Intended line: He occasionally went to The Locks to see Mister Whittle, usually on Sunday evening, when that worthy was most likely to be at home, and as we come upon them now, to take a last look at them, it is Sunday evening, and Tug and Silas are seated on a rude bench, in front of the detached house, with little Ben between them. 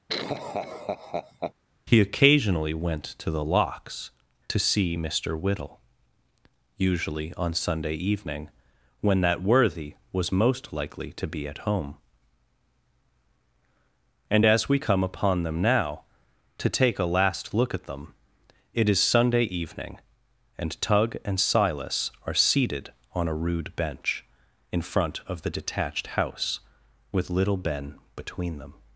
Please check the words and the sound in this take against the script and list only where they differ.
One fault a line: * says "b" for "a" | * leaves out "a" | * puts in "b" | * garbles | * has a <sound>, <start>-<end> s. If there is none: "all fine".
* has a laugh, 0.1-1.5 s